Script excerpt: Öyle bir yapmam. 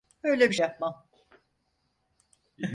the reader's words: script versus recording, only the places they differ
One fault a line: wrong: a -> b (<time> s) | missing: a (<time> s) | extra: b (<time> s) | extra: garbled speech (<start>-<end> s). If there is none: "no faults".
no faults